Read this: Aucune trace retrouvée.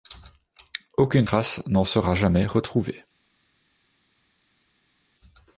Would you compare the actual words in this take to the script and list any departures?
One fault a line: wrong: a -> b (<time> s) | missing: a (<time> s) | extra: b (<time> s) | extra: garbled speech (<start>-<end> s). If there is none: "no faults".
extra: n'en sera jamais (1.7 s)